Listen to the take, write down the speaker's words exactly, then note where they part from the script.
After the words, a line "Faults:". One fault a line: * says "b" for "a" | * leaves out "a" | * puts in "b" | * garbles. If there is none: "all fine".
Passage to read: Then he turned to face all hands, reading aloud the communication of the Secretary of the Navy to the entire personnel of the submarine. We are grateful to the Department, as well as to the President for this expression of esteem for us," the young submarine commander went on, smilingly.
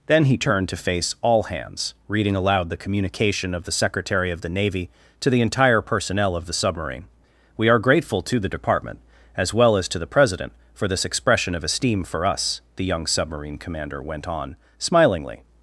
Then he turned to face all hands, reading aloud the communication of the Secretary of the Navy to the entire personnel of the submarine. We are grateful to the Department, as well as to the President for this expression of esteem for us," the young submarine commander went on, smilingly.
Faults:
all fine